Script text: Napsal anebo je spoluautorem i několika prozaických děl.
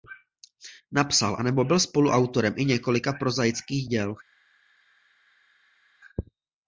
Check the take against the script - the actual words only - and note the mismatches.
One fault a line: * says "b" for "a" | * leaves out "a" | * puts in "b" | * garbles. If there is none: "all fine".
* says "byl" for "je"